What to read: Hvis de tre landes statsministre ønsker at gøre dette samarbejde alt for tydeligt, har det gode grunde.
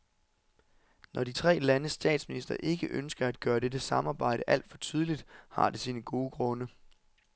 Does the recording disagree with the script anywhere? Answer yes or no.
yes